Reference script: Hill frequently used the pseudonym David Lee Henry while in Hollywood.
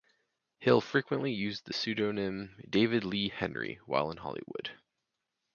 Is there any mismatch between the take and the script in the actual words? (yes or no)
no